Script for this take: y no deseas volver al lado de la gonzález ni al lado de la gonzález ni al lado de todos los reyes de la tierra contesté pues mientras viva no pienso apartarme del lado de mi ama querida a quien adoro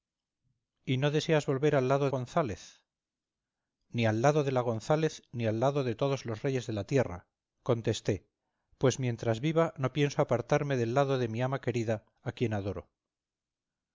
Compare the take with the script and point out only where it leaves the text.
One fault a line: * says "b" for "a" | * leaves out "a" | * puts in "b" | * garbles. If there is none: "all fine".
* leaves out "de la"